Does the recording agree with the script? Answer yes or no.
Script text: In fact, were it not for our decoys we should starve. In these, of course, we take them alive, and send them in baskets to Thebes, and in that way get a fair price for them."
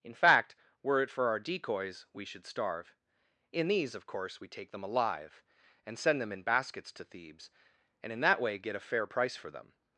no